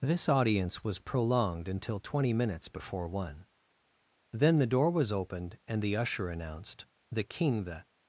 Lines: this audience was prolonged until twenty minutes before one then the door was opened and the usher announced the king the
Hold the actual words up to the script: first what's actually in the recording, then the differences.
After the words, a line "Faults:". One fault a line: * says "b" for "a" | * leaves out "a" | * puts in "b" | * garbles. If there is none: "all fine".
this audience was prolonged until twenty minutes before one then the door was opened and the usher announced the king the
Faults:
all fine